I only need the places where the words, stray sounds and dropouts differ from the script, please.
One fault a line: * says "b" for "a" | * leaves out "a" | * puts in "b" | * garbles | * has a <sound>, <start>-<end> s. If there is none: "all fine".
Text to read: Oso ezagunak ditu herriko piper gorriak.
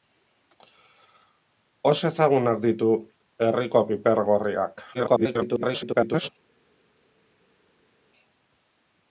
* garbles